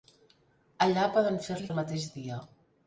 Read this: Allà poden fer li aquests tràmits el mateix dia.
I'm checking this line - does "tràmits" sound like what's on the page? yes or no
no